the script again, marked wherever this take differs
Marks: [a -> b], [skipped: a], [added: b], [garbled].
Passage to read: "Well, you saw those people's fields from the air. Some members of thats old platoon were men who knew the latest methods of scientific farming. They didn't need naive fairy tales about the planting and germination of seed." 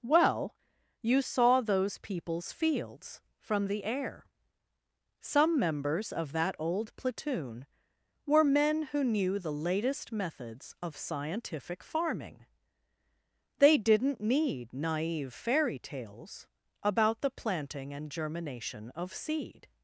"Well, you saw those people's fields from the air. Some members of [thats -> that] old platoon were men who knew the latest methods of scientific farming. They didn't need naive fairy tales about the planting and germination of seed."